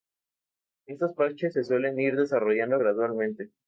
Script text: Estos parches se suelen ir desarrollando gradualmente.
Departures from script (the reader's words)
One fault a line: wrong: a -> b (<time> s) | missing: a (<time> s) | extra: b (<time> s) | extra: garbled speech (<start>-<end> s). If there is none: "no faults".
no faults